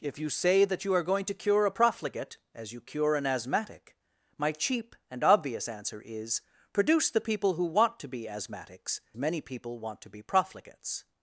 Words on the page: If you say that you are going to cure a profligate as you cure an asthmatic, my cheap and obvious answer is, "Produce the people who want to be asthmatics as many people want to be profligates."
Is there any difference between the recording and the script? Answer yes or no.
yes